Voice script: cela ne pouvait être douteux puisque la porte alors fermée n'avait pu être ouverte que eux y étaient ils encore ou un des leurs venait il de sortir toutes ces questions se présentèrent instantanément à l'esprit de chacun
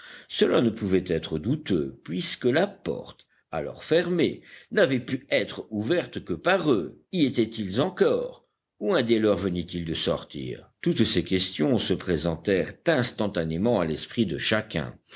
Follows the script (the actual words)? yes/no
no